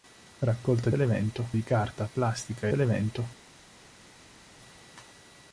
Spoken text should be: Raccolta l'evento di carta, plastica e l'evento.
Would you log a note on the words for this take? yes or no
no